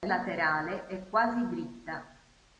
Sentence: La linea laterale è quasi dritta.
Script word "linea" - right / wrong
wrong